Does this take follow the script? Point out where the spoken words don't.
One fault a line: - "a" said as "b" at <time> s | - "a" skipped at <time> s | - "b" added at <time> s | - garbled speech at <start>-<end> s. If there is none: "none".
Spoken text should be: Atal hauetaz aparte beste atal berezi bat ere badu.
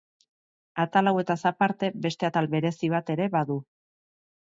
none